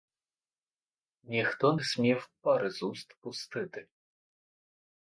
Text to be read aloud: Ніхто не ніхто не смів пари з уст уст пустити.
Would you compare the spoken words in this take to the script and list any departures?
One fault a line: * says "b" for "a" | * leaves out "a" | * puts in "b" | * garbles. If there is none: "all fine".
* leaves out "ніхто не"
* leaves out "уст"